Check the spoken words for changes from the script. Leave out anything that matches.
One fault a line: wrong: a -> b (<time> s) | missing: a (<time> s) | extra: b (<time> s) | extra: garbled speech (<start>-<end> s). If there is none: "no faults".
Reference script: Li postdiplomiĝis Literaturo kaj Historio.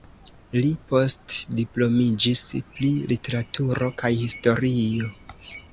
extra: pri (2.7 s)